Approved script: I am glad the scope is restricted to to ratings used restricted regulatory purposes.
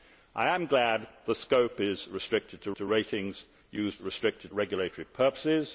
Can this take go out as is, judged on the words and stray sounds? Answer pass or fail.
pass